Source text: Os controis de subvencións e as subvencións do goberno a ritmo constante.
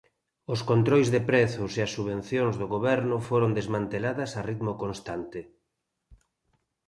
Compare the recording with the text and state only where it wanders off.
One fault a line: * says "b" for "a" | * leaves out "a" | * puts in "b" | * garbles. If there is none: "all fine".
* says "prezos" for "subvencións"
* puts in "foron desmanteladas"